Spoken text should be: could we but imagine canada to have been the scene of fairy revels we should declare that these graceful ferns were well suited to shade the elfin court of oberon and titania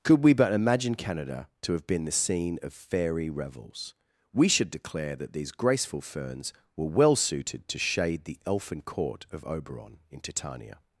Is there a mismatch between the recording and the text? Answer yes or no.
yes